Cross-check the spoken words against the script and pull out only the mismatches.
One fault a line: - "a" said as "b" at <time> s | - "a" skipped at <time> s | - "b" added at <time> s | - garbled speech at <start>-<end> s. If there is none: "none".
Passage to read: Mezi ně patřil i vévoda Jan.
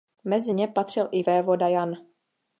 none